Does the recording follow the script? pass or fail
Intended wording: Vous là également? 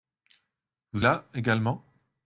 pass